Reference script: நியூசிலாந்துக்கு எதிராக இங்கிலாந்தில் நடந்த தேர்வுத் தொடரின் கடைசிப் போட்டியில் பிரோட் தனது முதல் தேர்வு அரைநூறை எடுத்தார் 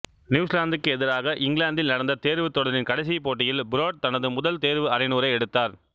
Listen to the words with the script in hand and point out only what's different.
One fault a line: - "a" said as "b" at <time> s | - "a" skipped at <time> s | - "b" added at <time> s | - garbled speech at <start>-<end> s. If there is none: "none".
none